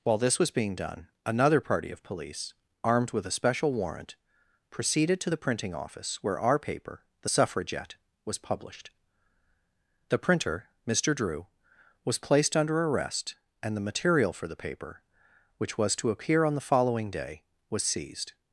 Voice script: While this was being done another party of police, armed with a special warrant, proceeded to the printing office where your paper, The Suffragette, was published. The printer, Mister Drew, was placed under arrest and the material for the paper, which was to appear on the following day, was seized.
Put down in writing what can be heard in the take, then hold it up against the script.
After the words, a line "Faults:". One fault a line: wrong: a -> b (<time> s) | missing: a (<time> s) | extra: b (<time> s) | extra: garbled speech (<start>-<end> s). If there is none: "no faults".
While this was being done another party of police, armed with a special warrant, proceeded to the printing office where our paper, The Suffragette, was published. The printer, Mister Drew, was placed under arrest and the material for the paper, which was to appear on the following day, was seized.
Faults:
wrong: your -> our (6.4 s)